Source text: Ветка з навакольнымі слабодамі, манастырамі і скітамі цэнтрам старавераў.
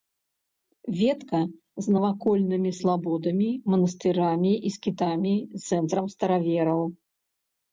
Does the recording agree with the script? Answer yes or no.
yes